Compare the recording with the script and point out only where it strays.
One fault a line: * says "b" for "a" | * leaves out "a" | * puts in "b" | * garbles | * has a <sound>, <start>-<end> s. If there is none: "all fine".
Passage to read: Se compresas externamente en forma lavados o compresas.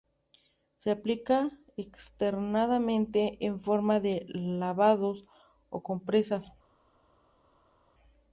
* says "aplica" for "compresas"
* puts in "de"